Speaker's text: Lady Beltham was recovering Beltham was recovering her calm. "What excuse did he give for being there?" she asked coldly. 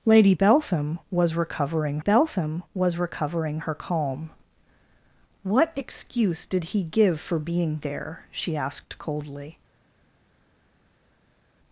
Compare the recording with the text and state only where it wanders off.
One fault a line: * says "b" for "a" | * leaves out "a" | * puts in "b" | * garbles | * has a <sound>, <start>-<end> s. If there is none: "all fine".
all fine